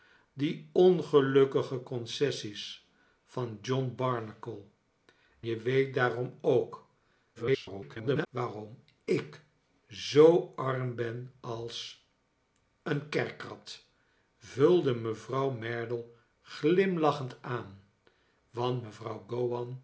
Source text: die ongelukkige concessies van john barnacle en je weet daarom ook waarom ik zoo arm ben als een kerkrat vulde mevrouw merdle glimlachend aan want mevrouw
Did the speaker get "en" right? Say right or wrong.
wrong